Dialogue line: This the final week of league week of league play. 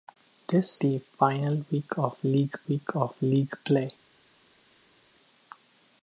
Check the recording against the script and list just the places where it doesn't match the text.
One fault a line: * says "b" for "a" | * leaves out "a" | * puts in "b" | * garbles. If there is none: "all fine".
all fine